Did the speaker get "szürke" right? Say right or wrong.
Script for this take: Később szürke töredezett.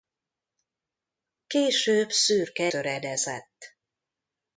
right